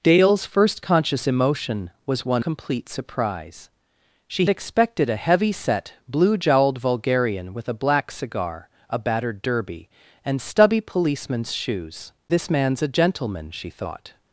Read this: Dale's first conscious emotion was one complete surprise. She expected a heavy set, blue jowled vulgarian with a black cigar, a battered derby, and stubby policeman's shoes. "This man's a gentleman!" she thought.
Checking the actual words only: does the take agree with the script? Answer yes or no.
yes